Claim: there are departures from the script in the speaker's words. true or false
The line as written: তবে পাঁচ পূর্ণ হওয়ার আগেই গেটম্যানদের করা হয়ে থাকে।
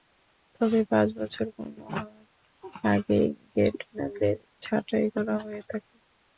true